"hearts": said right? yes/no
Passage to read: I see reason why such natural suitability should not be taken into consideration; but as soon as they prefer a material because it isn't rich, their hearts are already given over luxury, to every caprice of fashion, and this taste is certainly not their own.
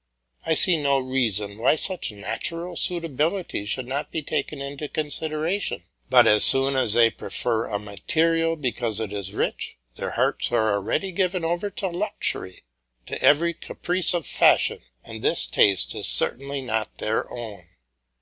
yes